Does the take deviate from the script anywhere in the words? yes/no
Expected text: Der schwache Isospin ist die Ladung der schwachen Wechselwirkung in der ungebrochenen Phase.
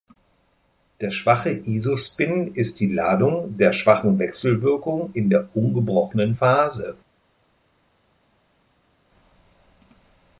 no